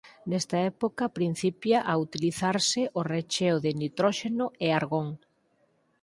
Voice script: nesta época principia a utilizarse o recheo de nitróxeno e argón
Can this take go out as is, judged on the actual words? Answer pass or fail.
pass